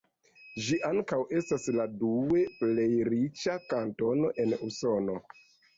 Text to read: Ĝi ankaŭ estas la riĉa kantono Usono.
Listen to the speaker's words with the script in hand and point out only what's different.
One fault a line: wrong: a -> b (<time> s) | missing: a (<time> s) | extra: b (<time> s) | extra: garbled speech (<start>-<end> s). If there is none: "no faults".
extra: due plej (2.0 s)
extra: en (4.5 s)